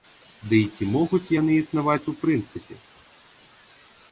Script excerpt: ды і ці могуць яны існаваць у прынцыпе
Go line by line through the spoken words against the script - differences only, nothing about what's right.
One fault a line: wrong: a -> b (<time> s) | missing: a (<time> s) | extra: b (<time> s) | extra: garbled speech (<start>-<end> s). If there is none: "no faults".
no faults